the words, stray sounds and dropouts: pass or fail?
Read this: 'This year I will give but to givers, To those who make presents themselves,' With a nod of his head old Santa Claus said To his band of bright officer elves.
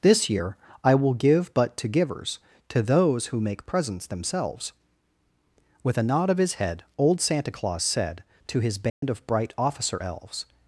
fail